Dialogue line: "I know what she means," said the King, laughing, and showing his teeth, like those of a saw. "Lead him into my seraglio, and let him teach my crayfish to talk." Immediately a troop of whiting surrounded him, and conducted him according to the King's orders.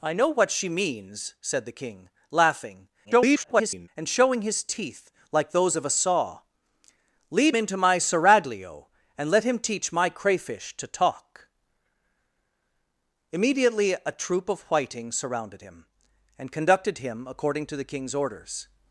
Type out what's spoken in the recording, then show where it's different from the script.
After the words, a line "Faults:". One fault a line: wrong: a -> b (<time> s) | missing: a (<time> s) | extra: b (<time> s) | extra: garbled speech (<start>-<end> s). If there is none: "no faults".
"I know what she means," said the King, laughing, [garbled] and showing his teeth, like those of a saw. "Lead into my seraglio, and let him teach my crayfish to talk." Immediately a troop of whiting surrounded him, and conducted him according to the King's orders.
Faults:
extra: garbled speech (3.0-3.9 s)
missing: him (7.5 s)